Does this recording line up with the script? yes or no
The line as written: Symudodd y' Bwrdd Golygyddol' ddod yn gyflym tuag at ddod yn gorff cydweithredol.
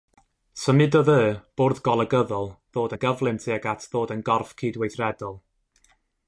yes